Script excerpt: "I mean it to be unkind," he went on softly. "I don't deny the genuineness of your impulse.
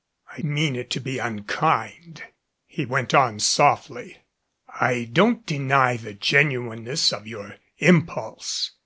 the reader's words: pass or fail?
pass